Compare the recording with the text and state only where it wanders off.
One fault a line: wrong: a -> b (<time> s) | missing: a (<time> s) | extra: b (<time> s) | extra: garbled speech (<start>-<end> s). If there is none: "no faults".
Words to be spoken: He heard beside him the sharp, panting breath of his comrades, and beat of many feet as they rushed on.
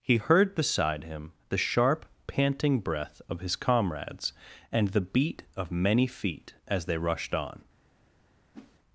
extra: the (4.9 s)